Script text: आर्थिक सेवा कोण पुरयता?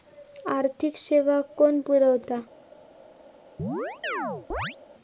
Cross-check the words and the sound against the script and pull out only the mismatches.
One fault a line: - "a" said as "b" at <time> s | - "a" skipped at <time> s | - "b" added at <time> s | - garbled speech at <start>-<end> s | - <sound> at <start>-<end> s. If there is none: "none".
- chirp at 3.6-4.8 s